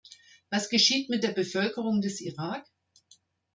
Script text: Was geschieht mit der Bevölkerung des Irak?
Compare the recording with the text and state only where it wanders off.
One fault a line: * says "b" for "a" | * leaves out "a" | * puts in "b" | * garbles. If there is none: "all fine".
all fine